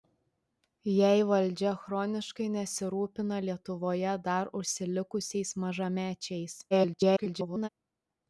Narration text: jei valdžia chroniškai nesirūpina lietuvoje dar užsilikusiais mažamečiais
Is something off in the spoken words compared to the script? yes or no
yes